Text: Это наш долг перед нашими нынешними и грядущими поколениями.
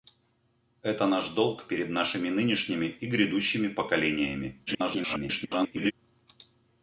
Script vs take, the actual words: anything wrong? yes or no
yes